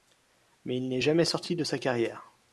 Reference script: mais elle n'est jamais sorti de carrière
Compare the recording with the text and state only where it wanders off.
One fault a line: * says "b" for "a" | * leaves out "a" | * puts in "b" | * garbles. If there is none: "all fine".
* says "il" for "elle"
* puts in "sa"